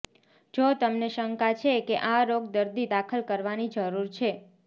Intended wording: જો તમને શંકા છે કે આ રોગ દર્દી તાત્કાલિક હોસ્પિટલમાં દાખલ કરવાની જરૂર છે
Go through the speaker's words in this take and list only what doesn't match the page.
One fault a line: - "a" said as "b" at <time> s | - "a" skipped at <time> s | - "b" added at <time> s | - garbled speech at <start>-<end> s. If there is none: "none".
- "તાત્કાલિક હોસ્પિટલમાં" skipped at 2.9 s